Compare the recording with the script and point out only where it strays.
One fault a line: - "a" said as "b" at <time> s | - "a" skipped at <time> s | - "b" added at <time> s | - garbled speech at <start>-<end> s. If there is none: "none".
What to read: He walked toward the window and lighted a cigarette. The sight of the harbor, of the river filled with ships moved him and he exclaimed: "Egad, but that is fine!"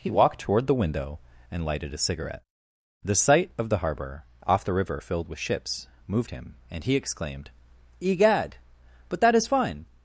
- "of" said as "off" at 4.5 s